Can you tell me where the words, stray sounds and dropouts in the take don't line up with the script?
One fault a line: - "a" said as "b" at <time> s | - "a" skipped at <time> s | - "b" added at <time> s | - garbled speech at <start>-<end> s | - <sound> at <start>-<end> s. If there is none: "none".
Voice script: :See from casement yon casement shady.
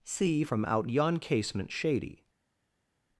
- "casement" said as "out" at 0.6 s